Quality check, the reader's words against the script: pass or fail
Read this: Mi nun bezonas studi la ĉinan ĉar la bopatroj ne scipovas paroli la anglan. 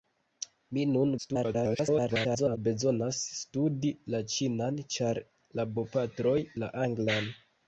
fail